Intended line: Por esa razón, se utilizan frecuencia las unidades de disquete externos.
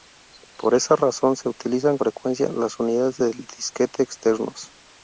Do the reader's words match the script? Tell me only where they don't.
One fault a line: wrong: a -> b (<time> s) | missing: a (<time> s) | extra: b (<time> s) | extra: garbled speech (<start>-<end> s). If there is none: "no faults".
no faults